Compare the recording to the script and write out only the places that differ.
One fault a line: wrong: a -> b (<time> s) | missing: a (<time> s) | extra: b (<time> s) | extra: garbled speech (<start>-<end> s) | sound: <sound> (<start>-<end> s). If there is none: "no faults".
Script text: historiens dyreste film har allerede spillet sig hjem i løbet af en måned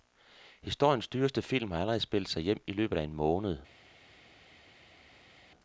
no faults